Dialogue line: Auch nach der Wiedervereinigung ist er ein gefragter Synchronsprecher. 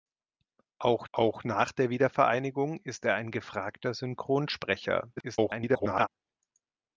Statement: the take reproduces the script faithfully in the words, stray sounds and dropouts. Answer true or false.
false